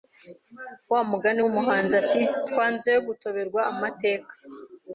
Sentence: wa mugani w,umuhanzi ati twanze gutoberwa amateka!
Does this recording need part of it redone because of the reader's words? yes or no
no